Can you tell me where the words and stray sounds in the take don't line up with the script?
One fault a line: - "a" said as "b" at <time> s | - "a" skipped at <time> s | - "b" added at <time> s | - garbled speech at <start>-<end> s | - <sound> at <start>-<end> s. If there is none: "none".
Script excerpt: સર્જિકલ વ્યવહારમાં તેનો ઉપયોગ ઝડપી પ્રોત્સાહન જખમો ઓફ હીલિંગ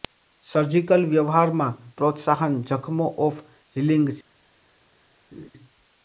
- "તેનો ઉપયોગ ઝડપી" skipped at 1.8 s
- laugh at 5.3-5.5 s